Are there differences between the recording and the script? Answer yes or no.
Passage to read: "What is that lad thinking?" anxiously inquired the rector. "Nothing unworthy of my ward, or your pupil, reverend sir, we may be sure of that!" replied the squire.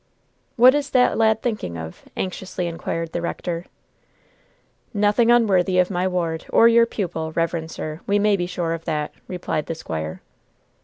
yes